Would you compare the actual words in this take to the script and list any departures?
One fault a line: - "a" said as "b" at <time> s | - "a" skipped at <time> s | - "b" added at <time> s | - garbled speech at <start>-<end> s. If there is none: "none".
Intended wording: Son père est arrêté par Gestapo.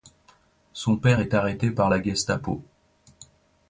- "la" added at 1.9 s